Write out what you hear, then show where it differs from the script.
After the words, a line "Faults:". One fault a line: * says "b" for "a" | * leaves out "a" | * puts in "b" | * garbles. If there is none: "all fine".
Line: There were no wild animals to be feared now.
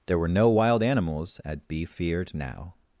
There were no wild animals at be feared now.
Faults:
* says "at" for "to"